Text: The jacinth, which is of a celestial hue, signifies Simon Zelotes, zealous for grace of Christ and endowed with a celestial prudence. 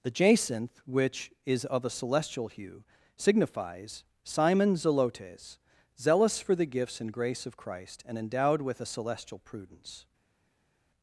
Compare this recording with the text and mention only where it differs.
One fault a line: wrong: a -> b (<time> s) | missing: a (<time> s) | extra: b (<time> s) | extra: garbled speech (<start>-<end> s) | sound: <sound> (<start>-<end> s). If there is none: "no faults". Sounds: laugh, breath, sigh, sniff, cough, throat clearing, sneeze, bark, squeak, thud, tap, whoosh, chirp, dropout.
extra: the gifts and (6.5 s)